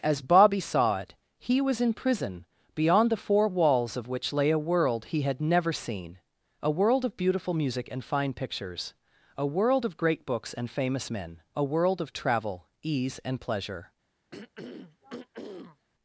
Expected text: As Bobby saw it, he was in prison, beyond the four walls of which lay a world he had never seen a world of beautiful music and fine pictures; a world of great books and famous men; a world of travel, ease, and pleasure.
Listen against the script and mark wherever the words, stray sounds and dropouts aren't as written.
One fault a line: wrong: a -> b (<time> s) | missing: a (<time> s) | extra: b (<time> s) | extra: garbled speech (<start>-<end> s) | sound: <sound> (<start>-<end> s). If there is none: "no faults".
sound: throat clearing (14.3-15.9 s)